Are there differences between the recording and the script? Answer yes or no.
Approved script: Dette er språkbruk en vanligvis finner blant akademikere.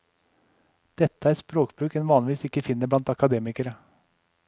yes